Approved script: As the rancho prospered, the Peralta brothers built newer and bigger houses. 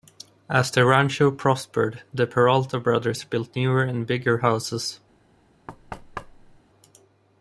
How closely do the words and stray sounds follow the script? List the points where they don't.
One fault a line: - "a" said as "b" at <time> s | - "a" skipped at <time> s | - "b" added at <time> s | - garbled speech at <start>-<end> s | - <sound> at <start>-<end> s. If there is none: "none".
- thud at 5.7-6.6 s